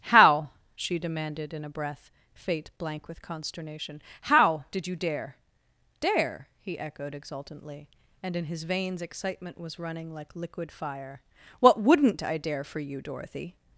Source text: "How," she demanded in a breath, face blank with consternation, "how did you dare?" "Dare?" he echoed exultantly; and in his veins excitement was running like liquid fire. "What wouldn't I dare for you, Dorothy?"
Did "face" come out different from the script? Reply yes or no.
yes